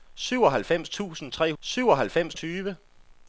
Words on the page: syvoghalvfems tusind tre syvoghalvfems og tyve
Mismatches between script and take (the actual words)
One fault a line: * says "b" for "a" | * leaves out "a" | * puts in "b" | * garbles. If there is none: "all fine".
all fine